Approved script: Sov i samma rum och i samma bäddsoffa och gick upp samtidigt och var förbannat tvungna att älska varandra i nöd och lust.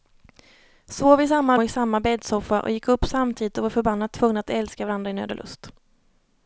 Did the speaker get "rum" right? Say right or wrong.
wrong